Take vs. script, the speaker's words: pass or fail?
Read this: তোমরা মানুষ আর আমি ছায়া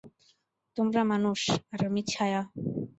pass